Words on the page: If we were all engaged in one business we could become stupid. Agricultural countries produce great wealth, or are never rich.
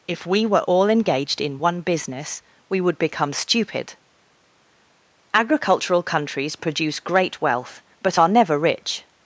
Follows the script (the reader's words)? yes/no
no